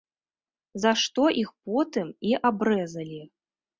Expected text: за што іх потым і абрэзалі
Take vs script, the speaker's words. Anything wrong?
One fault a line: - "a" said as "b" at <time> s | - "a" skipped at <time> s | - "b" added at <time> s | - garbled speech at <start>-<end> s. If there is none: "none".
none